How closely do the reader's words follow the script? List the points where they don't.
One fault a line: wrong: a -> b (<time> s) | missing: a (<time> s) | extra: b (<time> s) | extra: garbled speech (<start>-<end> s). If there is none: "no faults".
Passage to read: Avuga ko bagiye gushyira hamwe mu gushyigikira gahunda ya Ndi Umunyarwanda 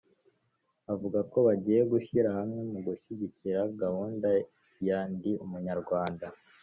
no faults